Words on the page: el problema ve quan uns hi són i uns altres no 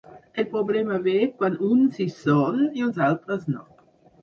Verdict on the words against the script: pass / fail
pass